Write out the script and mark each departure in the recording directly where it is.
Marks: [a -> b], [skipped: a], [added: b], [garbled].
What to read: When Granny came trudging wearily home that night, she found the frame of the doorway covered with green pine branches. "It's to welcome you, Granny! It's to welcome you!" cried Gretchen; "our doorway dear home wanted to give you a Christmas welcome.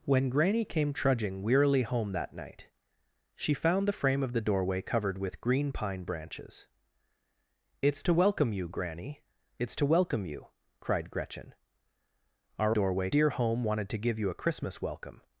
When Granny came trudging wearily home that night, she found the frame of the doorway covered with green pine branches. "It's to welcome you, Granny! It's to welcome you!" cried Gretchen; "our doorway dear home wanted to give you a Christmas welcome.